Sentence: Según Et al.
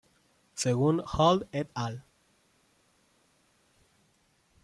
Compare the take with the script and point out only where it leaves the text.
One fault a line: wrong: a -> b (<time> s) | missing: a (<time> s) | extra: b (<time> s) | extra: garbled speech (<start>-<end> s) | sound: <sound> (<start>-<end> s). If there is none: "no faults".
extra: Hall (1.0 s)